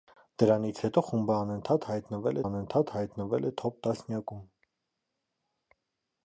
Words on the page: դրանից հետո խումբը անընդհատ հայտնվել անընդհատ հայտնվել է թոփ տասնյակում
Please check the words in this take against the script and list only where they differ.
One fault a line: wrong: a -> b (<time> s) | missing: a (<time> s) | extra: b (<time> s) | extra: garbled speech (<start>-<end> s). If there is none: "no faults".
no faults